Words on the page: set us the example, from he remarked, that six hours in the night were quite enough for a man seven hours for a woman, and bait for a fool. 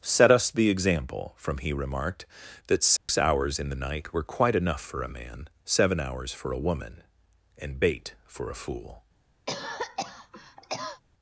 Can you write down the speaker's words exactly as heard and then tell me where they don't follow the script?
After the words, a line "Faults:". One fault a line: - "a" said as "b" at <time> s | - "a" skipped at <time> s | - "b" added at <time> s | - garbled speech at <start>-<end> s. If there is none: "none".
set us the example, from he remarked, that six hours in the night were quite enough for a man seven hours for a woman, and bait for a fool.
Faults:
none